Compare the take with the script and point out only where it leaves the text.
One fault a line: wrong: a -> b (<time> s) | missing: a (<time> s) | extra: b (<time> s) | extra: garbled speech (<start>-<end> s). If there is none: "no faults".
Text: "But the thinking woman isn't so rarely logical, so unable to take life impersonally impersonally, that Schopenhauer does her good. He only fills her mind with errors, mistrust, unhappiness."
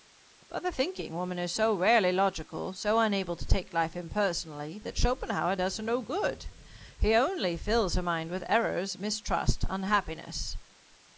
wrong: isn't -> is (1.4 s)
missing: impersonally (4.8 s)
extra: no (5.8 s)